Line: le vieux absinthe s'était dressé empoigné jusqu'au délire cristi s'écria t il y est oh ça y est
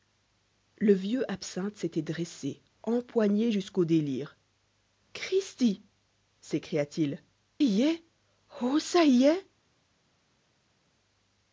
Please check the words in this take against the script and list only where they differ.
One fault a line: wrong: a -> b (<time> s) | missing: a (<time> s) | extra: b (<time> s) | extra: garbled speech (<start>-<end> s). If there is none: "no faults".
no faults